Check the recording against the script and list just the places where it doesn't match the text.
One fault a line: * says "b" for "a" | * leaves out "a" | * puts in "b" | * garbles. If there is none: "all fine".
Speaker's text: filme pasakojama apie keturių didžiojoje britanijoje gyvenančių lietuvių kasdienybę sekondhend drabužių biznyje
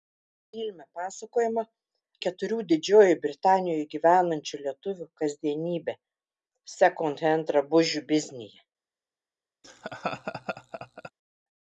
* leaves out "apie"